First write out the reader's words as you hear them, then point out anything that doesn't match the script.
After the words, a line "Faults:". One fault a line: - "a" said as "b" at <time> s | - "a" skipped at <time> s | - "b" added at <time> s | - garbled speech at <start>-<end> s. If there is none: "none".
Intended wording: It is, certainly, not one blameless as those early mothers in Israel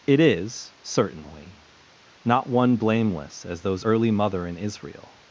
It is, certainly, not one blameless as those early mother in Israel
Faults:
- "mothers" said as "mother" at 4.1 s